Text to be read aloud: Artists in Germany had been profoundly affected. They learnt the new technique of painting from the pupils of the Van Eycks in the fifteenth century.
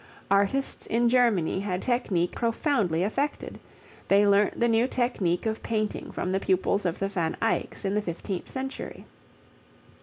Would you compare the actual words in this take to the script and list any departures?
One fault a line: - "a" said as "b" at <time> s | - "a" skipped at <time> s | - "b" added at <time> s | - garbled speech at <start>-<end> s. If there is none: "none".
- "been" said as "technique" at 1.8 s